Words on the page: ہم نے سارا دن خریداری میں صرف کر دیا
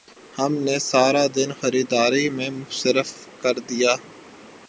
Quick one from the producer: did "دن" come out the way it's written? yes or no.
yes